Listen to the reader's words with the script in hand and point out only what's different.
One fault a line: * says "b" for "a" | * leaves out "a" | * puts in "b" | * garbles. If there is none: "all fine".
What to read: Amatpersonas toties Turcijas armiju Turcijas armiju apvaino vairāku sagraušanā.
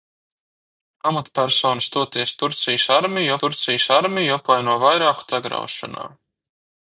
all fine